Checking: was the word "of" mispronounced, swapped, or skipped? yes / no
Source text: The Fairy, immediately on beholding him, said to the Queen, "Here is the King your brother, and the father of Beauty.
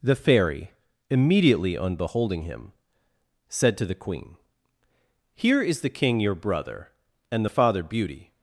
yes